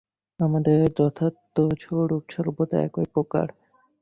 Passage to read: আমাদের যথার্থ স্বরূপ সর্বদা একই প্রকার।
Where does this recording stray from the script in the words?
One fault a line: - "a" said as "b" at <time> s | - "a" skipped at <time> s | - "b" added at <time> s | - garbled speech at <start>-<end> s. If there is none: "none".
none